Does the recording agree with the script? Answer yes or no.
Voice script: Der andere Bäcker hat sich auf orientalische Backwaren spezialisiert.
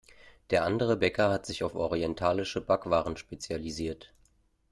yes